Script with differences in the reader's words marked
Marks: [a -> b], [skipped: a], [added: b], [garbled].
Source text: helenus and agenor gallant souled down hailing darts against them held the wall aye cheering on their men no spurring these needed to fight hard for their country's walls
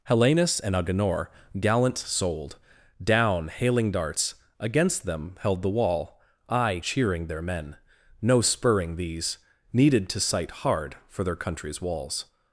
helenus and agenor gallant souled down hailing darts against them held the wall aye cheering [skipped: on] their men no spurring these needed to [fight -> sight] hard for their country's walls